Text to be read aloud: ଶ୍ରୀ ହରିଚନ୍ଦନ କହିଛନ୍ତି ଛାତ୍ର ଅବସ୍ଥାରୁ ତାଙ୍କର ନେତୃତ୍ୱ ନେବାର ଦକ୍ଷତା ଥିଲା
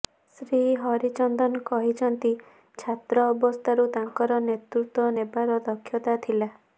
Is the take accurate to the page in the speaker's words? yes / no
yes